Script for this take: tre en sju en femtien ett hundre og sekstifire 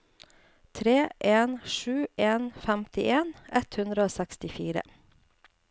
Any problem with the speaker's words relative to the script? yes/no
no